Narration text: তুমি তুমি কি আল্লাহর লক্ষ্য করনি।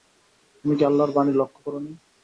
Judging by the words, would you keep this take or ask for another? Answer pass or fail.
fail